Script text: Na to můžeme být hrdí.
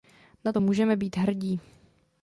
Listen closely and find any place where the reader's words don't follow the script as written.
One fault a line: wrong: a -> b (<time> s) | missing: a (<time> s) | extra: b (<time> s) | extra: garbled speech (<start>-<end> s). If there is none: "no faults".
no faults